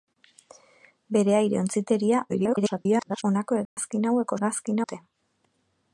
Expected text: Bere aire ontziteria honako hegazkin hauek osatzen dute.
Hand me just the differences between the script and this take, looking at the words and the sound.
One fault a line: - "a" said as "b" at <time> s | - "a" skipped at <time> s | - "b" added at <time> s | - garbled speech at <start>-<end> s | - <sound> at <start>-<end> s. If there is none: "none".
- garbled speech at 2.3-3.2 s
- dropout at 3.7-3.8 s
- "osatzen" said as "hegazkin" at 4.3 s